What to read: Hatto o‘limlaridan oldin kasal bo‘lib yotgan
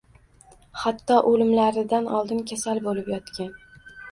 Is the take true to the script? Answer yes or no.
yes